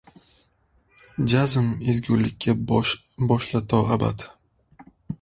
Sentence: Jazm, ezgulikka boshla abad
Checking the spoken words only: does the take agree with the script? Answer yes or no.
no